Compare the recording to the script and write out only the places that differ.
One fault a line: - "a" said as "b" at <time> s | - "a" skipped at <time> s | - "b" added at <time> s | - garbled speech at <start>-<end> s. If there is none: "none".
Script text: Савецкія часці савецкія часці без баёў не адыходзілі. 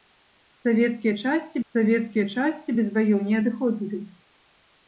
none